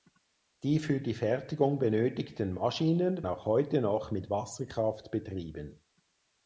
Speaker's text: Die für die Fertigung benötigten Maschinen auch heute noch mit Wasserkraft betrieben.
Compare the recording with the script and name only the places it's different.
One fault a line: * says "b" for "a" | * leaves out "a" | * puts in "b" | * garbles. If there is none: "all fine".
all fine